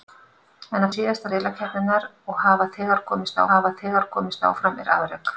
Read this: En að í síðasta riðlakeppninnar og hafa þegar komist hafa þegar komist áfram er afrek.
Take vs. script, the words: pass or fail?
pass